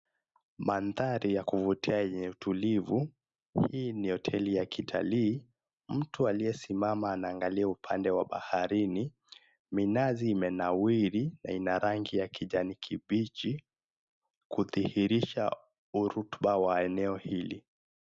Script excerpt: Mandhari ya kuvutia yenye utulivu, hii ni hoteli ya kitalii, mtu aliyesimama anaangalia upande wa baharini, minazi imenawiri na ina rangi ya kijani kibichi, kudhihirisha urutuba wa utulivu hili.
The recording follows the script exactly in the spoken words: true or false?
false